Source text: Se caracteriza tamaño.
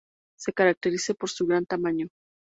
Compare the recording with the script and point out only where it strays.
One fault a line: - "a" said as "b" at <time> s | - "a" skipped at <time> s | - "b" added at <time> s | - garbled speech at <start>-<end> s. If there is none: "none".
- "por su gran" added at 1.1 s